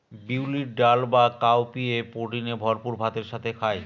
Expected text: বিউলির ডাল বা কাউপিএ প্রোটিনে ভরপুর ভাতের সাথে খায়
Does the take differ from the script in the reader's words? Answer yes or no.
no